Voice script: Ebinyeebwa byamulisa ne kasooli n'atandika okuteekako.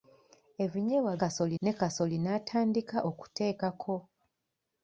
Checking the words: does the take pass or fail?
fail